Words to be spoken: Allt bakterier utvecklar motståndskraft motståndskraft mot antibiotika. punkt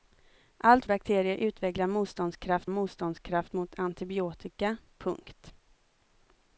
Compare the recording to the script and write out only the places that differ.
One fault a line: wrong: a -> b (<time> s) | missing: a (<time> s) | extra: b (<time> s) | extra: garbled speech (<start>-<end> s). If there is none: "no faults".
no faults